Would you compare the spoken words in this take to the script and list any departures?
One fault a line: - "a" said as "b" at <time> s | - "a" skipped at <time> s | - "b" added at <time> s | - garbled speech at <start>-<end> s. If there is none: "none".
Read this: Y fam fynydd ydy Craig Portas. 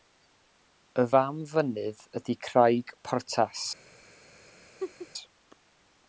none